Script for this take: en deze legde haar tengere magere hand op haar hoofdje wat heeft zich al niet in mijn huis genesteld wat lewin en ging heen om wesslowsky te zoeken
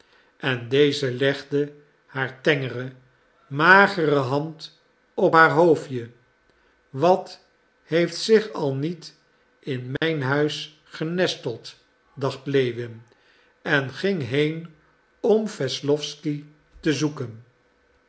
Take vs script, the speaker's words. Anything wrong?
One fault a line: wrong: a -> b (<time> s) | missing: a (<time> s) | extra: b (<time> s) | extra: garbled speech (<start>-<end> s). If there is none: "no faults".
wrong: wat -> dacht (12.1 s)